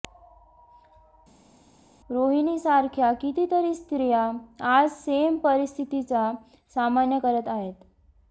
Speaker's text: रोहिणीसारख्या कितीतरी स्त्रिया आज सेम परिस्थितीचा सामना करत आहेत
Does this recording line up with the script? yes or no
yes